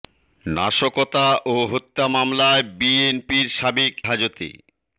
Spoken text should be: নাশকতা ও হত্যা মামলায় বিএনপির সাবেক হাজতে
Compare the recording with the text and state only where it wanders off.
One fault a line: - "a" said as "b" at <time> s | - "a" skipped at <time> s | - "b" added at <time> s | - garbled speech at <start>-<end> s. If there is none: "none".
none